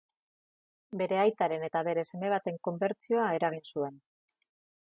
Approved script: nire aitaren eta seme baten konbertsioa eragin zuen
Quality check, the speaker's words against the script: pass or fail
fail